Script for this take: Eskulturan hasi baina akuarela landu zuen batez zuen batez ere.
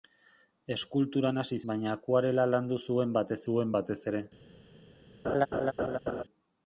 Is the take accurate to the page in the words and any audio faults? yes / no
no